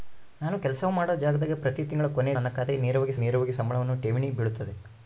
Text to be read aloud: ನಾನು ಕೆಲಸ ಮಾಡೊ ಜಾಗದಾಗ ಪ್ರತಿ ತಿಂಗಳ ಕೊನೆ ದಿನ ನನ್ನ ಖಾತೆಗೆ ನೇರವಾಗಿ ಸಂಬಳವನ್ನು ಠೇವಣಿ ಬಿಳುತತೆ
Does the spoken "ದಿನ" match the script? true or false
false